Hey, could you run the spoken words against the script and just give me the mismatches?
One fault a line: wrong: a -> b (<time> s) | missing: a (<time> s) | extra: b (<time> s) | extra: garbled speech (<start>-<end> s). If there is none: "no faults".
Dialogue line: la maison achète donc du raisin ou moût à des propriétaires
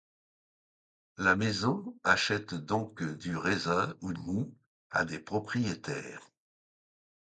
no faults